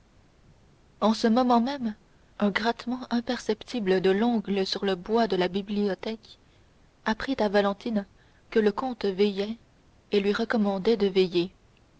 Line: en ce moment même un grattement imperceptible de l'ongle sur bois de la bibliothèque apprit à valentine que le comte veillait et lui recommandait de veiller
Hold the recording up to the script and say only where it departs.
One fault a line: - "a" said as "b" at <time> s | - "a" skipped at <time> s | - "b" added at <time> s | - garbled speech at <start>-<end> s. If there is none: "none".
- "le" added at 4.8 s